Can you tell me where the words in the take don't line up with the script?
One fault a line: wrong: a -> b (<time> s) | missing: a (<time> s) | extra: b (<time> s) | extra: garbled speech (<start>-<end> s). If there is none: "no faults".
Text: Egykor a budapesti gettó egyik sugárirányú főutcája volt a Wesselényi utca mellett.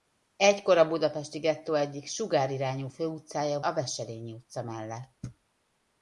missing: volt (3.6 s)